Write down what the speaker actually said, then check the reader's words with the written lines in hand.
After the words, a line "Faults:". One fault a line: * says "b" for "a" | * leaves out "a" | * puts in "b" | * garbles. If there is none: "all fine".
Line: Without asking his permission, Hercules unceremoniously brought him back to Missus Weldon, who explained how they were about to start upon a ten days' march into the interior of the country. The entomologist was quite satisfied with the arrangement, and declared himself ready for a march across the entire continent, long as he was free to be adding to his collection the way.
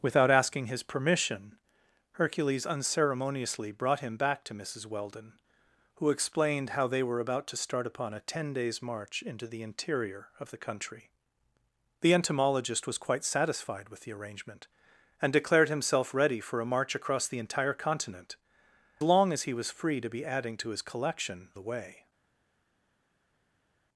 Without asking his permission, Hercules unceremoniously brought him back to Missus Weldon, who explained how they were about to start upon a ten days' march into the interior of the country. The entomologist was quite satisfied with the arrangement, and declared himself ready for a march across the entire continent, long as he was free to be adding to his collection the way.
Faults:
all fine